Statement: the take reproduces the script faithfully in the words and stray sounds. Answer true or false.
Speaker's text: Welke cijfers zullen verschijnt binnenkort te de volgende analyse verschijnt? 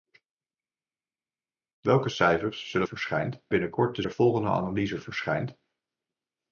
true